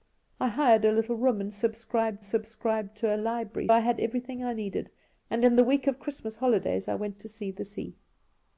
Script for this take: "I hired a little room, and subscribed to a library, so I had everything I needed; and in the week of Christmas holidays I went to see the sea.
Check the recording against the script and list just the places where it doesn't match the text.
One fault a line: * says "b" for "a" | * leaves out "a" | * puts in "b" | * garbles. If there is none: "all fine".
* puts in "subscribed"
* leaves out "so"